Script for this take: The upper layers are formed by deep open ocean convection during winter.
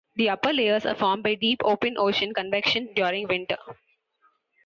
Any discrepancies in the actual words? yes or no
no